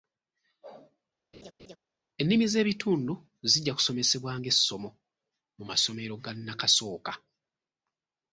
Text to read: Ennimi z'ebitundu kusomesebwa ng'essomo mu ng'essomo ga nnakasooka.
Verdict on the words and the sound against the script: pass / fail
fail